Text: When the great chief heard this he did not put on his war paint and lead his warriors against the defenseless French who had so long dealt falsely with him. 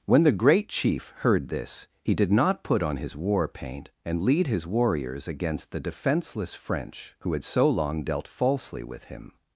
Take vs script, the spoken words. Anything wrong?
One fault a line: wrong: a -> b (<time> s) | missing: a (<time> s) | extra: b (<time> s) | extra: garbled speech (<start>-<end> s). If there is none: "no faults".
no faults